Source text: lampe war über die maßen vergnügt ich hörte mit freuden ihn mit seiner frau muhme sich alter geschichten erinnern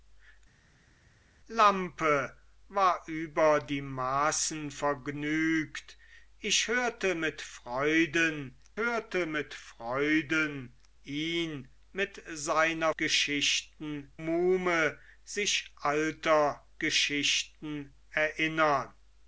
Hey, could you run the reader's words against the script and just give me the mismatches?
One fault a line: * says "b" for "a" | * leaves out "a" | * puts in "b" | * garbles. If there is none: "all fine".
* puts in "hörte mit freuden"
* says "geschichten" for "frau"